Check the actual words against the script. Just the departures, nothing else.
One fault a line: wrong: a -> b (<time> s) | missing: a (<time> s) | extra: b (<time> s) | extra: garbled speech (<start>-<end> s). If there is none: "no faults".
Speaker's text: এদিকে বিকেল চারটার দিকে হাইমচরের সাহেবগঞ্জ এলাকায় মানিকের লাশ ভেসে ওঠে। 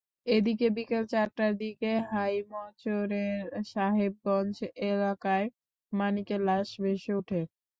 no faults